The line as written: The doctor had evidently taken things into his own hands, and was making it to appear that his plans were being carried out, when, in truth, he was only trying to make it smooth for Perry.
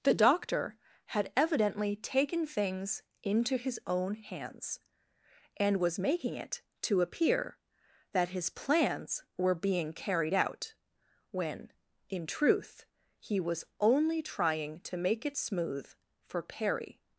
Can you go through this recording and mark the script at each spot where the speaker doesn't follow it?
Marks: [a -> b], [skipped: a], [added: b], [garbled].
The doctor had evidently taken things into his own hands, and was making it to appear that his plans were being carried out, when, in truth, he was only trying to make it smooth for Perry.